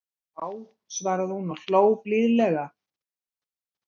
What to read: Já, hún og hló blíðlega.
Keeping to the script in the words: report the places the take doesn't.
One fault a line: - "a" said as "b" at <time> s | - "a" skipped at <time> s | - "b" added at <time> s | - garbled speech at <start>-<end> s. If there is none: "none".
- "svaraði" added at 1.0 s